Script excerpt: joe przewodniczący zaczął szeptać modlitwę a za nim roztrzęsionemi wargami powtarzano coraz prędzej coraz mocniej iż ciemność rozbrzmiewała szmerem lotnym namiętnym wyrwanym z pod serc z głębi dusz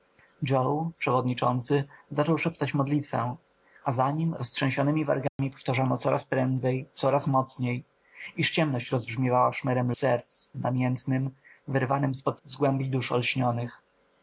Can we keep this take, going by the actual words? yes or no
no